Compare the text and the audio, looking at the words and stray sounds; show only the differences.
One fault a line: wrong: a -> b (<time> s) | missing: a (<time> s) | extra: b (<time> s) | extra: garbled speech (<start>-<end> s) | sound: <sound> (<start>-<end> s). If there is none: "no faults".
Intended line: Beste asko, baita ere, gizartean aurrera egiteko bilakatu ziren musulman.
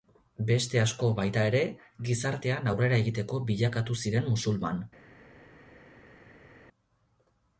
no faults